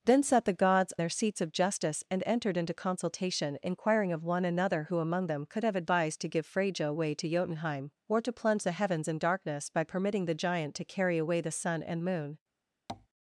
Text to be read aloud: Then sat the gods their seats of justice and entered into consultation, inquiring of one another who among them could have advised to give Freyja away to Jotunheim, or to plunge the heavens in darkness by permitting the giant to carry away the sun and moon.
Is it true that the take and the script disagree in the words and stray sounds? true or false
true